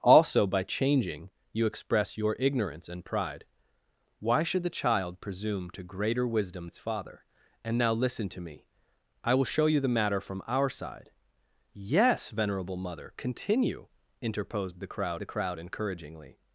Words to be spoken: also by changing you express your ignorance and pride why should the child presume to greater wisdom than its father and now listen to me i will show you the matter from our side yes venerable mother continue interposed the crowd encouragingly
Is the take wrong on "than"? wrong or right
wrong